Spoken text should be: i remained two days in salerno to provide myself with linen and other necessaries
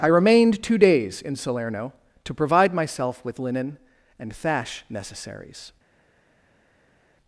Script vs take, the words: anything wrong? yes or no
yes